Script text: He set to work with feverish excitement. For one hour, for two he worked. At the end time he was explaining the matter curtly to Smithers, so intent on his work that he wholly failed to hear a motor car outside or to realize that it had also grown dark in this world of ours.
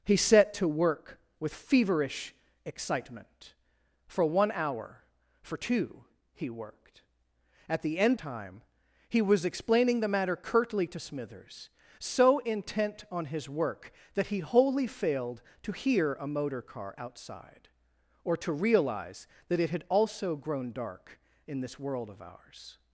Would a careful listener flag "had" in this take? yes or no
no